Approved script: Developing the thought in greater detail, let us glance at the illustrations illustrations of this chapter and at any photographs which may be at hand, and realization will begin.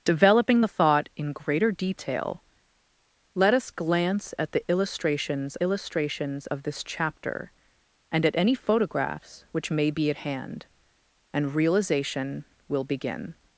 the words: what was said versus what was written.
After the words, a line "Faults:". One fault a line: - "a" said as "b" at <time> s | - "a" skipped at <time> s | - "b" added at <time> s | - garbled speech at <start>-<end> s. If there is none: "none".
Developing the thought in greater detail, let us glance at the illustrations illustrations of this chapter and at any photographs which may be at hand, and realization will begin.
Faults:
none